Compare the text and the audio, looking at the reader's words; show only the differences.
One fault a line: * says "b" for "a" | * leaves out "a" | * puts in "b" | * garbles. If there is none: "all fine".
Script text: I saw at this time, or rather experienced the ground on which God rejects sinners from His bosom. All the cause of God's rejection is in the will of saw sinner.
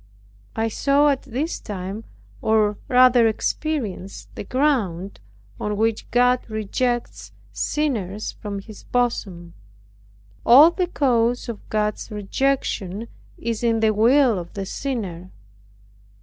* says "the" for "saw"